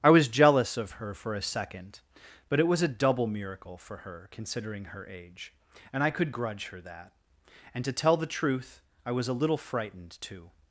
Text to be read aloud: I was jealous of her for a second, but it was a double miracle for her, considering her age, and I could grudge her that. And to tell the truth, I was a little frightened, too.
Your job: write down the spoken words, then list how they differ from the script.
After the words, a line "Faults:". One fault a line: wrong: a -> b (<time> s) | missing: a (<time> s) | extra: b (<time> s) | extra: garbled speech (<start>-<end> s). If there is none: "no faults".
I was jealous of her for a second, but it was a double miracle for her, considering her age, and I could grudge her that. And to tell the truth, I was a little frightened, too.
Faults:
no faults